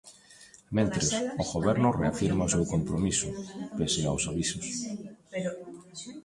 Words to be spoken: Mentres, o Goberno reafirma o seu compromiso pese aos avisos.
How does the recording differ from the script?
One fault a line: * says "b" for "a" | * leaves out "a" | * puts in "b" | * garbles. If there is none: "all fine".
all fine